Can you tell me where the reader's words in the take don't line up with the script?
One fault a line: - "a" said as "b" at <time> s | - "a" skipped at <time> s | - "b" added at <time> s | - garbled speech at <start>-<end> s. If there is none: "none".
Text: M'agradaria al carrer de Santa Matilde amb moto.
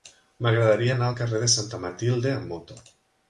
- "anar" added at 0.9 s